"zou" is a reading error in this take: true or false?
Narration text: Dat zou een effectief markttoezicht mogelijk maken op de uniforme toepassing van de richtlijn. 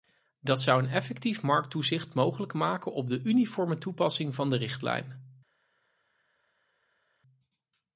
false